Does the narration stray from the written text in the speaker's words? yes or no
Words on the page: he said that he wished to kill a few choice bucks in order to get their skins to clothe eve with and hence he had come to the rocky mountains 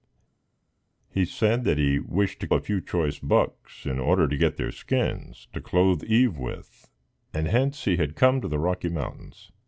yes